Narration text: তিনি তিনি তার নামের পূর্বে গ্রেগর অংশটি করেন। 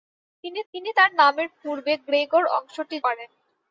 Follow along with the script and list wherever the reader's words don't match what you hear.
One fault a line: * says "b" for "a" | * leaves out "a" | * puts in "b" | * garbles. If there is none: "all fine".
all fine